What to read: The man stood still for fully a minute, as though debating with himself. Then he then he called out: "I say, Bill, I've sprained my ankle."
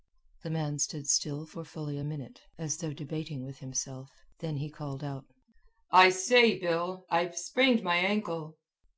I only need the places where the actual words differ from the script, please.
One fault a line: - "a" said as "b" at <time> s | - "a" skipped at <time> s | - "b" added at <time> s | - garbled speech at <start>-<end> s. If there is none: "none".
- "then he" skipped at 4.7 s